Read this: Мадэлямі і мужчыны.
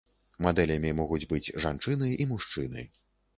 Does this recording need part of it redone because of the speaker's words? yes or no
yes